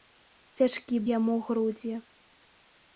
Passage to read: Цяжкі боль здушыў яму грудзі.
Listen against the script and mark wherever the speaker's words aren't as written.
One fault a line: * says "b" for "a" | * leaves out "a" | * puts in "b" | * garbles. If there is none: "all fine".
* leaves out "боль здушыў"